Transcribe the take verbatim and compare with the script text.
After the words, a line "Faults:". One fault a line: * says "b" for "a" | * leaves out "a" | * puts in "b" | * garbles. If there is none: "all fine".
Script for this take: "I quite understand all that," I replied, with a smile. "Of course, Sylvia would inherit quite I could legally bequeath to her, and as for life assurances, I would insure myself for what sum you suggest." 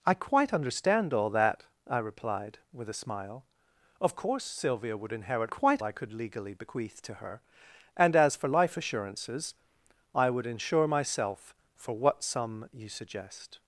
"I quite understand all that," I replied, with a smile. "Of course, Sylvia would inherit quite I could legally bequeath to her, and as for life assurances, I would insure myself for what sum you suggest."
Faults:
all fine